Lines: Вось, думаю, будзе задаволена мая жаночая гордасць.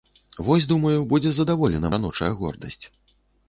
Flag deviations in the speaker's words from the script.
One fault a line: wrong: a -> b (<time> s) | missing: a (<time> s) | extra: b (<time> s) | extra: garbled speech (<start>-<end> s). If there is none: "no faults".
missing: мая (1.9 s)